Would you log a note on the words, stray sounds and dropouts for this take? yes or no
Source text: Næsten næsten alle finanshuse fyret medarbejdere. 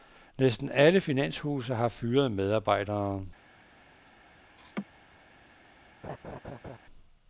yes